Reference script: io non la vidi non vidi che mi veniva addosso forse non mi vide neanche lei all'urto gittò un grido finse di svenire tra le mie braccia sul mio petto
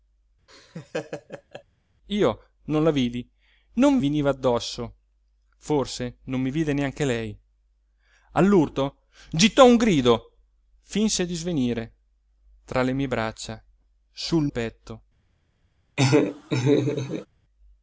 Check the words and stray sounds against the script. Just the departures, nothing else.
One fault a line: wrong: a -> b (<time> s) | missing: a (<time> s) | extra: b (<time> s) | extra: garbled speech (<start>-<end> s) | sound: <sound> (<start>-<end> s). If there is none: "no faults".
sound: laugh (0.5-1.6 s)
missing: vidi che mi (4.0 s)
missing: mio (14.5 s)
sound: laugh (16.0-17.3 s)